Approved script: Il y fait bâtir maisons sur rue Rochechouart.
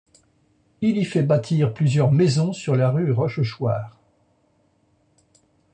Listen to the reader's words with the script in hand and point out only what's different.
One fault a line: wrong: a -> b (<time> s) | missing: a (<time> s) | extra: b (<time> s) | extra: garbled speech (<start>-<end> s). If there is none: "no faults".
extra: plusieurs (1.8 s)
extra: la (2.8 s)